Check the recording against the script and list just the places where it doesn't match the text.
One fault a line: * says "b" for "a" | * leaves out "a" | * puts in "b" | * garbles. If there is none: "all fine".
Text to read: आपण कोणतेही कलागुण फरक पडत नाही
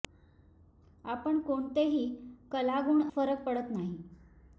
all fine